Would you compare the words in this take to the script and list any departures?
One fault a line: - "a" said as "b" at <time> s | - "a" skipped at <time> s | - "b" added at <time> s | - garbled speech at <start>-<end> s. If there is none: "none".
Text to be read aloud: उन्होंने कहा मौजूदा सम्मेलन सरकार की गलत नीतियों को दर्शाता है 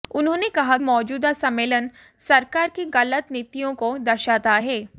none